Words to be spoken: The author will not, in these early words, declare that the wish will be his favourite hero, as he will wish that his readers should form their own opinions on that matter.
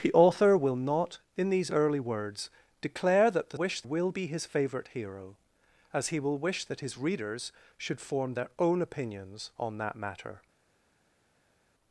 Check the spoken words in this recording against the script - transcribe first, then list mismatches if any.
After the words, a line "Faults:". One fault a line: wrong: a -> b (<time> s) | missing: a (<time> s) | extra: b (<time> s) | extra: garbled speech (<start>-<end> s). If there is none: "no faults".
The author will not, in these early words, declare that the wish will be his favourite hero, as he will wish that his readers should form their own opinions on that matter.
Faults:
no faults